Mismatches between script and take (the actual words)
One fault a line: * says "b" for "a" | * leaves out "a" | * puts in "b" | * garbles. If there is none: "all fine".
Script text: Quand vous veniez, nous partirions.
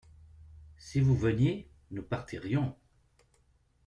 * says "Si" for "Quand"